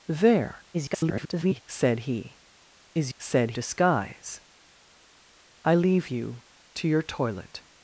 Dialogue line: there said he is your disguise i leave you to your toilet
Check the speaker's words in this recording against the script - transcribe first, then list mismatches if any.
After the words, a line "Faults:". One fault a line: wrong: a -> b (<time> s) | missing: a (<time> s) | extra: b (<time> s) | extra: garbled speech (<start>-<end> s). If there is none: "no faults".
there [garbled] said he is said disguise i leave you to your toilet
Faults:
extra: garbled speech (0.7-1.6 s)
wrong: your -> said (3.2 s)